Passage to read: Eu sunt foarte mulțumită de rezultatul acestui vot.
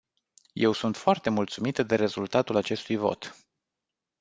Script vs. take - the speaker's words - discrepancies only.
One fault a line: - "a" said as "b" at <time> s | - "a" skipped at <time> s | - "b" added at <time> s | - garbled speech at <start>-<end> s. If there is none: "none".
none